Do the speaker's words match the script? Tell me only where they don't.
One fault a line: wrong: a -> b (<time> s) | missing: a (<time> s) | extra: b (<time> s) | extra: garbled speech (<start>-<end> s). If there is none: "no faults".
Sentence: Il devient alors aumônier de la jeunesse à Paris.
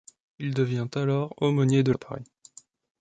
missing: la jeunesse (1.9 s)